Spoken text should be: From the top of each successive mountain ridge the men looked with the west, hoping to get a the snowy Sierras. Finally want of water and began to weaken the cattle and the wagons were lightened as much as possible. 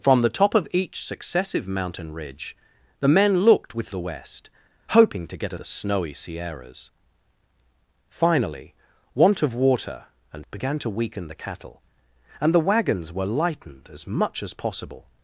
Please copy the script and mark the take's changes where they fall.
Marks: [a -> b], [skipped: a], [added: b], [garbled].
From the top of each successive mountain ridge the men looked with the west, hoping to get a the snowy Sierras. Finally want of water and began to weaken the cattle and the wagons were lightened as much as possible.